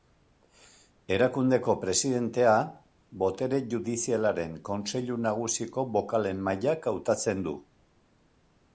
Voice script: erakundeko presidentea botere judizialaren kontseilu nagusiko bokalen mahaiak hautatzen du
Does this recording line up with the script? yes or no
yes